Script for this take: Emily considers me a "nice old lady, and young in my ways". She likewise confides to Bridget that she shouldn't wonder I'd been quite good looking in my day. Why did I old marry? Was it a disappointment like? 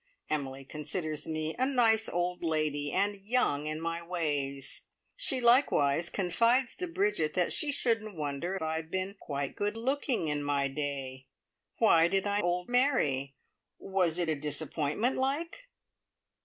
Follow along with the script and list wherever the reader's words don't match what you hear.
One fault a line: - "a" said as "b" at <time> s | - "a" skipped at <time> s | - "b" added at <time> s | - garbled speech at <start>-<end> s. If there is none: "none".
none